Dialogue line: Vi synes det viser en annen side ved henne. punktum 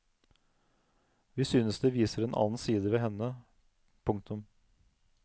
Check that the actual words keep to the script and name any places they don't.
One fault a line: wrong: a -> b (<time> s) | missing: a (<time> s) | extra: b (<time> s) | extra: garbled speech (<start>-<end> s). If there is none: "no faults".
no faults